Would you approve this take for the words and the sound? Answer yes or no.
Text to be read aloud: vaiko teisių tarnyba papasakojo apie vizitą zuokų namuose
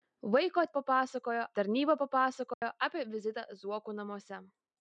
no